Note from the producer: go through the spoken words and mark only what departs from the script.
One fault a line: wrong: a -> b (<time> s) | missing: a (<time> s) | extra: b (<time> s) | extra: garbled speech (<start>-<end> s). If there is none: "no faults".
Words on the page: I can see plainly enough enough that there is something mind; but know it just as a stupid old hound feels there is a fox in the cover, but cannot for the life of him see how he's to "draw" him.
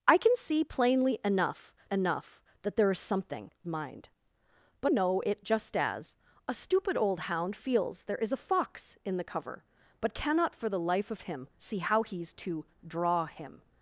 no faults